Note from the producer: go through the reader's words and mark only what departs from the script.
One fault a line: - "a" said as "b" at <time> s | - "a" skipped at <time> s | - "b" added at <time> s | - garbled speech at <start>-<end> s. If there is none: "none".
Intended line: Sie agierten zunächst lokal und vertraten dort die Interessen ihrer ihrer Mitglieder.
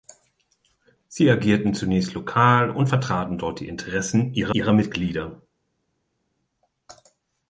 none